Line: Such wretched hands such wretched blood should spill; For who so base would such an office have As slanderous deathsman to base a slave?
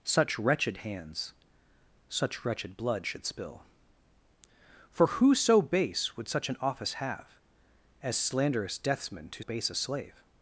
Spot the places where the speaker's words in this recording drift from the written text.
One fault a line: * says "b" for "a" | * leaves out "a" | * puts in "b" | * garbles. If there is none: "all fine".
all fine